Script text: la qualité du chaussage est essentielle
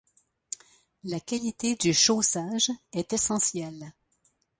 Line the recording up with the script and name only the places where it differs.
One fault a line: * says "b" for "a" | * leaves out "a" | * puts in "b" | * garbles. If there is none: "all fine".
all fine